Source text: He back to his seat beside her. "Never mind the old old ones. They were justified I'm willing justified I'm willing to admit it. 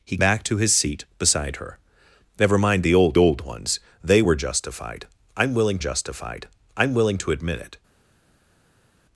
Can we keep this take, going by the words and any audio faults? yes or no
yes